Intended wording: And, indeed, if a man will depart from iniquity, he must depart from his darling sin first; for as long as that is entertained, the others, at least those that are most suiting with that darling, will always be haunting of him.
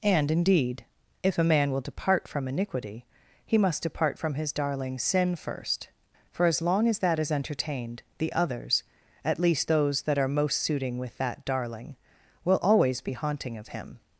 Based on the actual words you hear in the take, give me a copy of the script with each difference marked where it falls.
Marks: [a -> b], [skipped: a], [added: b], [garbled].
And, indeed, if a man will depart from iniquity, he must depart from his darling sin first; for as long as that is entertained, the others, at least those that are most suiting with that darling, will always be haunting of him.